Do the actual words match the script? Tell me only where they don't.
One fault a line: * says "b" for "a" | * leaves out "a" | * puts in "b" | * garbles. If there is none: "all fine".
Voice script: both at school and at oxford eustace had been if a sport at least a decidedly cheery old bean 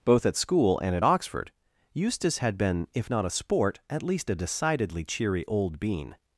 * puts in "not"